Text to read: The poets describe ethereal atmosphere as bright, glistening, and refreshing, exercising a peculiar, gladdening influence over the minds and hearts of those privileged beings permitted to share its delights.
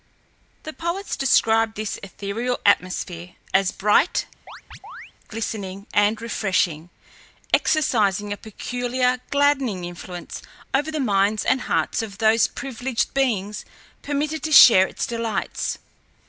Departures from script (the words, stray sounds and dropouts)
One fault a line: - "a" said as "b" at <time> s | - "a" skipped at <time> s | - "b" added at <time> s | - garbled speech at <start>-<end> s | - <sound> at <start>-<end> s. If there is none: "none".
- "this" added at 1.7 s
- chirp at 4.5-5.1 s